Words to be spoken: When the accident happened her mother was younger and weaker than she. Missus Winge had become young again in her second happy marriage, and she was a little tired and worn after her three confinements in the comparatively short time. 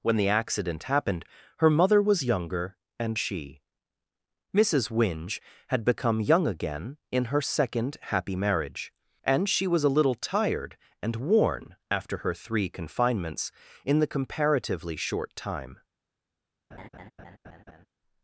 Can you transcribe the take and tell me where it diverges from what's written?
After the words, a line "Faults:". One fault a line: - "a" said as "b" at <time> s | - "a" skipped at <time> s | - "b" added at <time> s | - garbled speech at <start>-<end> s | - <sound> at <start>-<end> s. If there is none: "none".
When the accident happened her mother was younger and she. Missus Winge had become young again in her second happy marriage, and she was a little tired and worn after her three confinements in the comparatively short time.
Faults:
- "weaker than" skipped at 3.2 s
- laugh at 16.7-17.9 s